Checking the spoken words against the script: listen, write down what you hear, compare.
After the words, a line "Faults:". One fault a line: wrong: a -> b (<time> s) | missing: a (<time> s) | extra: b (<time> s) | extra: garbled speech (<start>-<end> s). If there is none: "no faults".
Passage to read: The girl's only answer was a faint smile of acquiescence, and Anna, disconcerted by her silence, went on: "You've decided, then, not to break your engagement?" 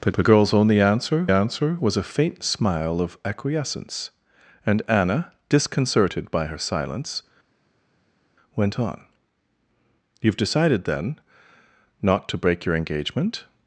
The the girl's only answer answer was a faint smile of acquiescence, and Anna, disconcerted by her silence, went on: "You've decided, then, not to break your engagement?"
Faults:
extra: the (0.1 s)
extra: answer (1.3 s)